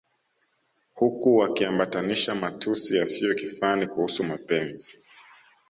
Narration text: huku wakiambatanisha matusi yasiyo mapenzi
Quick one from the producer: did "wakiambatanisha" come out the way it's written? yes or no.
yes